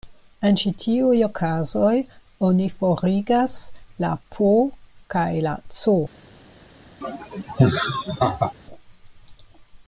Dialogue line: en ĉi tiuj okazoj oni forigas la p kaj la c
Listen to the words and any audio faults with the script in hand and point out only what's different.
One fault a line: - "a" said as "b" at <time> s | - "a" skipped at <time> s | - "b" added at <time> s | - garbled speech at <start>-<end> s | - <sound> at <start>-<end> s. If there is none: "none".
- laugh at 7.0-8.5 s